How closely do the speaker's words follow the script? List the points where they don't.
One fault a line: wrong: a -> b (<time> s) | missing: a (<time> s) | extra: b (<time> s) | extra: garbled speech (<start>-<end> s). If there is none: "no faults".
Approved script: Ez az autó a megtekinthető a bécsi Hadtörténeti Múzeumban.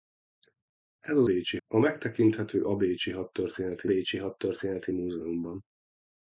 wrong: autó -> bécsi (1.2 s)
extra: bécsi Hadtörténeti (3.8 s)